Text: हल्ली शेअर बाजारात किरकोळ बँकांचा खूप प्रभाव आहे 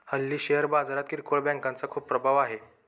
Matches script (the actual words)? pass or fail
pass